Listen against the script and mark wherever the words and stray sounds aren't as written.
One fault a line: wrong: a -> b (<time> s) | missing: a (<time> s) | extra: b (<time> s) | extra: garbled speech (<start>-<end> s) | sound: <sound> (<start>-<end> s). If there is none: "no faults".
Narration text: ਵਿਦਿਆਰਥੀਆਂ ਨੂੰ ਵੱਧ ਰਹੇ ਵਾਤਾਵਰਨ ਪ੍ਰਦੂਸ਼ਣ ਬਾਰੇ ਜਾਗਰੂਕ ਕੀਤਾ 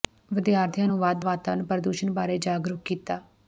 missing: ਰਹੇ (1.2 s)